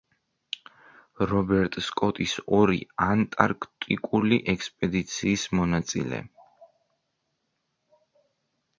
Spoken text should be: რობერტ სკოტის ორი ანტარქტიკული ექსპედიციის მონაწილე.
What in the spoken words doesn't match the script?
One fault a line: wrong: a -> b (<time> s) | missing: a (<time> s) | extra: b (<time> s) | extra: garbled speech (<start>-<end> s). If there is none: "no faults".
no faults